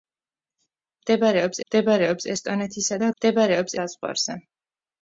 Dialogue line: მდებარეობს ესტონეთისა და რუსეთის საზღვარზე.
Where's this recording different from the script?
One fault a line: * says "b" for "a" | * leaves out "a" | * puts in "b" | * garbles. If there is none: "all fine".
* puts in "მდებარეობს"
* says "მდებარეობს" for "რუსეთის"